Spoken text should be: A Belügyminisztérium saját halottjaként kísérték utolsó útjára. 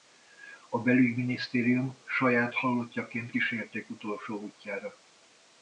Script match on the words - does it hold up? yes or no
yes